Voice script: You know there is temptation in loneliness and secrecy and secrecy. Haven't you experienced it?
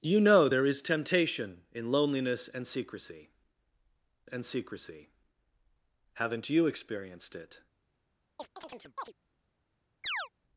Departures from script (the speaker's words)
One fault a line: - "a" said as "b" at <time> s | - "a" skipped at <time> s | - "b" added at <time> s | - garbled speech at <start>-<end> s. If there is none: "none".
none